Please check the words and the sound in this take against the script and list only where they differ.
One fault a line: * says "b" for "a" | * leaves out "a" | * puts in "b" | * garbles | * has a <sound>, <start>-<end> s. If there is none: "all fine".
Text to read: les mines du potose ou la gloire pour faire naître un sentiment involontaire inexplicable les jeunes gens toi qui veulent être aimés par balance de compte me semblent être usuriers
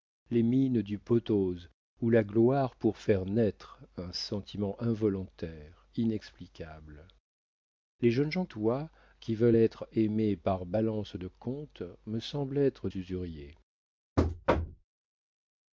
* has a thud, 14.2-14.8 s